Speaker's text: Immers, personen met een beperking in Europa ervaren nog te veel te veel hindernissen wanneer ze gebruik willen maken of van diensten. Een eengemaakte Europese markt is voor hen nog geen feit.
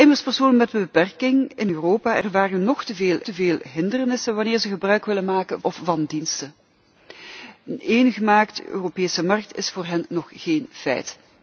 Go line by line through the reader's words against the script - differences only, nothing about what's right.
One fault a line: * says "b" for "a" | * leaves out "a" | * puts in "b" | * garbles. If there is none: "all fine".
all fine